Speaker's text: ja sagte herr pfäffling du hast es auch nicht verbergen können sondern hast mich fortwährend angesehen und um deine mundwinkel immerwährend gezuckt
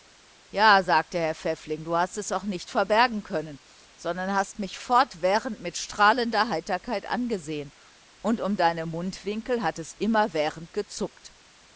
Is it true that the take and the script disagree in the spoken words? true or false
true